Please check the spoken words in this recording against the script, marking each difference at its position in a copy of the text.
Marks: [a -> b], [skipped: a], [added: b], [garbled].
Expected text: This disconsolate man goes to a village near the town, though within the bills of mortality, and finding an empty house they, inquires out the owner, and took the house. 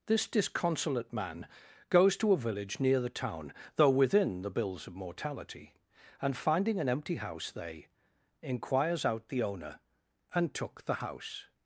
This disconsolate man goes to a village near the town, though within the bills of mortality, and finding an empty house they, inquires out the owner, and took the house.